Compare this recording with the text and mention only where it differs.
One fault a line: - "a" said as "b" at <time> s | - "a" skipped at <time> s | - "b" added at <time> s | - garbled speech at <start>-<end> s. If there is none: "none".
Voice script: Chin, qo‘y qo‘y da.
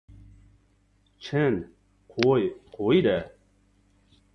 none